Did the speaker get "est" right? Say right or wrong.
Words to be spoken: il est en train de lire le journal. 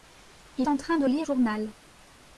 wrong